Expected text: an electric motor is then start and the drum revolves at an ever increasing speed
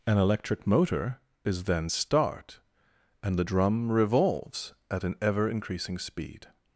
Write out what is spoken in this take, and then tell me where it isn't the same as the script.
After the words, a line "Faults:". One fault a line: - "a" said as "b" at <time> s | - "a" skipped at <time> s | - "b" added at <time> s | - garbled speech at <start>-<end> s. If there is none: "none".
an electric motor is then start and the drum revolves at an ever increasing speed
Faults:
none